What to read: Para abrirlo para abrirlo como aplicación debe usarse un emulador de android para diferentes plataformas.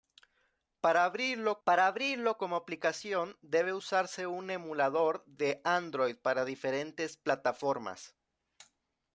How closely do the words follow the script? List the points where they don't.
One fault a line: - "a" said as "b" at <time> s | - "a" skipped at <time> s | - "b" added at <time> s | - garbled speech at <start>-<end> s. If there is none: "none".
none